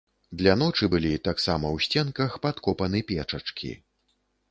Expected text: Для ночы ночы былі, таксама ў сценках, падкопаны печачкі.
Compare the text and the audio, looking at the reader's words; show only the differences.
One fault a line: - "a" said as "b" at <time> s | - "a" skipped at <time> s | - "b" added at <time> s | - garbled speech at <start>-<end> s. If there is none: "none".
- "ночы" skipped at 0.9 s